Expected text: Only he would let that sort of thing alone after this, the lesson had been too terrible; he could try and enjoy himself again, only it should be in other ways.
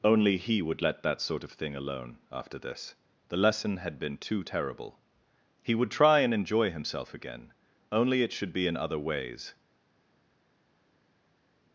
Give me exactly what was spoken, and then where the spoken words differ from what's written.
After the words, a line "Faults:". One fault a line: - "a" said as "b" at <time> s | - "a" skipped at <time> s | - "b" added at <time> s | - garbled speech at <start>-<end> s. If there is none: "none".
Only he would let that sort of thing alone after this, the lesson had been too terrible; he would try and enjoy himself again, only it should be in other ways.
Faults:
- "could" said as "would" at 5.7 s